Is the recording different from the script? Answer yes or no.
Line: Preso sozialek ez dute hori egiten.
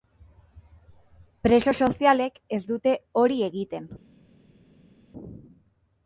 no